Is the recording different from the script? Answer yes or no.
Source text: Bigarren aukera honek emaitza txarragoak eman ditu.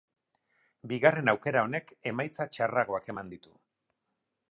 no